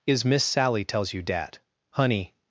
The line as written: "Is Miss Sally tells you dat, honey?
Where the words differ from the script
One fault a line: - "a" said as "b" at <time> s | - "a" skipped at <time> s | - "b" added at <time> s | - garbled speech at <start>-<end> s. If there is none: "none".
none